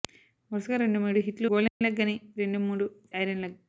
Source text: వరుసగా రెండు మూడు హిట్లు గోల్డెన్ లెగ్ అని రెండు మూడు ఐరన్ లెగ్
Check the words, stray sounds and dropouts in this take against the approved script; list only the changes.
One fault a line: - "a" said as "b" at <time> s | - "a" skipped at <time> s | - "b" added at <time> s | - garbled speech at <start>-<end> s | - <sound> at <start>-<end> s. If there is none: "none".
- dropout at 1.7-1.8 s